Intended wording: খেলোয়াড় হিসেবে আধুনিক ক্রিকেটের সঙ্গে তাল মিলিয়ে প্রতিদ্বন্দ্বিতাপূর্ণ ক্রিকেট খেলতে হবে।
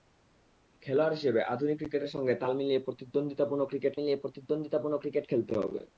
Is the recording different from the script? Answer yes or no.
yes